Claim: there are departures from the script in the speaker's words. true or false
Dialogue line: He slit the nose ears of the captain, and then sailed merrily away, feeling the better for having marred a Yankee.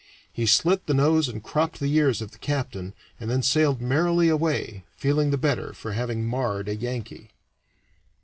true